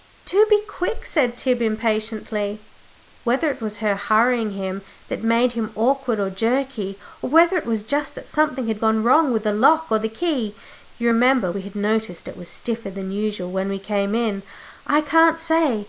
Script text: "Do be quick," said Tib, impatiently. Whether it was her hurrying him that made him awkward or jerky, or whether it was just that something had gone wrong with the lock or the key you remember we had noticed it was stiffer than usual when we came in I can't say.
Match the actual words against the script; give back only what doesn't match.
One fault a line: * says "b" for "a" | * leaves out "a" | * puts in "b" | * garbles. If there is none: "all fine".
all fine